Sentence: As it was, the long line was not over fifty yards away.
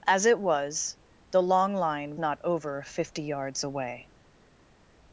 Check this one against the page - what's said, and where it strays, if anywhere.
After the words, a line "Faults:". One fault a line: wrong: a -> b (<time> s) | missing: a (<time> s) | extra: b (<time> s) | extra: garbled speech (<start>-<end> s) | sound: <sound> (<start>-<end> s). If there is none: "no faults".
As it was, the long line not over fifty yards away.
Faults:
missing: was (2.2 s)